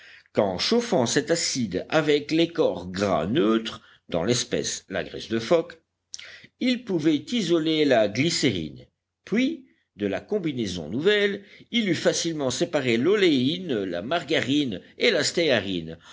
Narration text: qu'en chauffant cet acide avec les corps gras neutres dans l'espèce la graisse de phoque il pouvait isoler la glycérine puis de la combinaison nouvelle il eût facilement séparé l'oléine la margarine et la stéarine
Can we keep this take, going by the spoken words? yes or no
yes